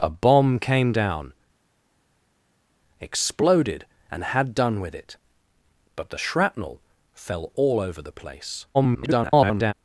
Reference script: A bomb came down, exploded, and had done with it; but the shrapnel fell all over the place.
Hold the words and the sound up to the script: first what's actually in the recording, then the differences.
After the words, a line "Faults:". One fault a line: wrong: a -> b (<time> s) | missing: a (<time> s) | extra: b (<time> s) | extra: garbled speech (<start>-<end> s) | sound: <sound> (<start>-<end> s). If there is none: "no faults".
A bomb came down, exploded, and had done with it; but the shrapnel fell all over the place. [garbled]
Faults:
extra: garbled speech (8.7-9.7 s)